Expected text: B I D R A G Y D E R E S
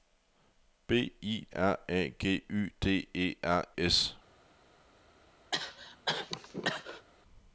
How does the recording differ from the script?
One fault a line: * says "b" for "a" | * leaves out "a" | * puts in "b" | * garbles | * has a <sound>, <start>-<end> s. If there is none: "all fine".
* leaves out "D"
* leaves out "E"
* has a cough, 5.5-7.1 s